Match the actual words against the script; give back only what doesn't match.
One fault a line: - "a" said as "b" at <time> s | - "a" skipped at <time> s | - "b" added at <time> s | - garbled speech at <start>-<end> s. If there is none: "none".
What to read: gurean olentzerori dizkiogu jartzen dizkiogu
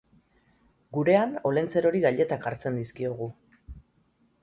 - "dizkiogu" said as "gailetak" at 2.1 s